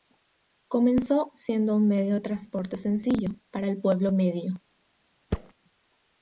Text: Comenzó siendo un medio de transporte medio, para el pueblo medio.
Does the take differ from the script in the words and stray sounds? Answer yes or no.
yes